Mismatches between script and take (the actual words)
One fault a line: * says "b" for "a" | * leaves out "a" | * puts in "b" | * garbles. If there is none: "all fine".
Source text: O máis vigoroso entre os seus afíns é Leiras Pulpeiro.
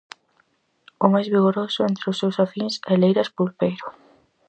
all fine